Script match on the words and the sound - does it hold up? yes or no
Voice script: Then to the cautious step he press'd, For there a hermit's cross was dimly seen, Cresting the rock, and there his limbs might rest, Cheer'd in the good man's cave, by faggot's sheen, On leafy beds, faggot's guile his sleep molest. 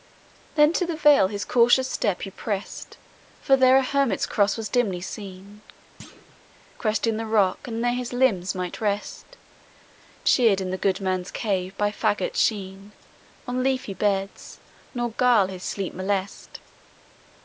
no